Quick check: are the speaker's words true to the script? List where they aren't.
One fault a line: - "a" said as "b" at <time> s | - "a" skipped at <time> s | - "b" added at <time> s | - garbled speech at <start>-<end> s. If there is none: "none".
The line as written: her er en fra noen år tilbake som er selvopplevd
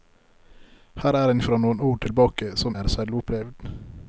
none